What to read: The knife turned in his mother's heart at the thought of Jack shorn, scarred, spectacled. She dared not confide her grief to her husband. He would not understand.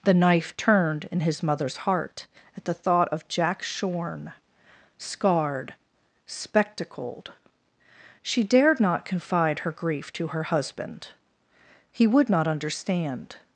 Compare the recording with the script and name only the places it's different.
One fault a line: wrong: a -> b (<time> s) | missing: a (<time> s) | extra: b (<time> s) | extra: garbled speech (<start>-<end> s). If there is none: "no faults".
no faults